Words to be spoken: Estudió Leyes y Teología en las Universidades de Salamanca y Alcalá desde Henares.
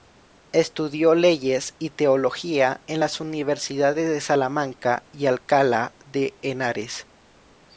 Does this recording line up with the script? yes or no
no